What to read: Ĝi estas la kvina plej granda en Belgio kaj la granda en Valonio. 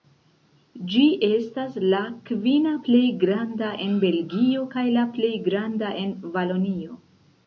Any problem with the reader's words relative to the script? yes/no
yes